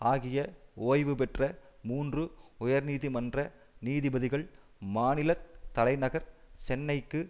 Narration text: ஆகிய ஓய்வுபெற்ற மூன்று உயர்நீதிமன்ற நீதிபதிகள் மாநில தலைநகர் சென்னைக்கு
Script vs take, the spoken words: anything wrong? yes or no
no